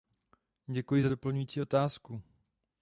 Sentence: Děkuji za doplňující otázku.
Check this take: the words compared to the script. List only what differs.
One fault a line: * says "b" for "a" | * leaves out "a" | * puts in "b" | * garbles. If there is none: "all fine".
all fine